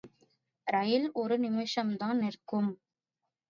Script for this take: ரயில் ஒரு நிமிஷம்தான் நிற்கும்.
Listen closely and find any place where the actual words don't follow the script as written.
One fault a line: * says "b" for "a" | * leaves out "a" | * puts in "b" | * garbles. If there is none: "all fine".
all fine